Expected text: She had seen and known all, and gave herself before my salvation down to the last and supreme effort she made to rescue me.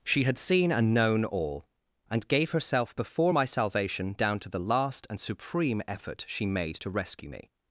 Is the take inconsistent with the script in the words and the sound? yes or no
no